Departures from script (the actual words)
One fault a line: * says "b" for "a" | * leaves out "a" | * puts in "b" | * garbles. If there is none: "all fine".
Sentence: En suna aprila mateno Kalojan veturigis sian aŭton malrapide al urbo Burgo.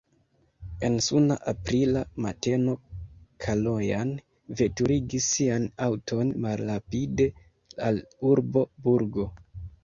all fine